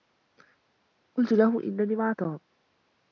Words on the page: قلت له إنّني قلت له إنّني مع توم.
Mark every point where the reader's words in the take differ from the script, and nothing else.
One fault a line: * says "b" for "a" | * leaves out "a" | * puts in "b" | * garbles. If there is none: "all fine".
* leaves out "قلت له إنّني"